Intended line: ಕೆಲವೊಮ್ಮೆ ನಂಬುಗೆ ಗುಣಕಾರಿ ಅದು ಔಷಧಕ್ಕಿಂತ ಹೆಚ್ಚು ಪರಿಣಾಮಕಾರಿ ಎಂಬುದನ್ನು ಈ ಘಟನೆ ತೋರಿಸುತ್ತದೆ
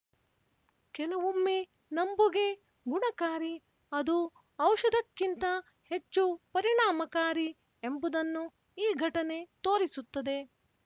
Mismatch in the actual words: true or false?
false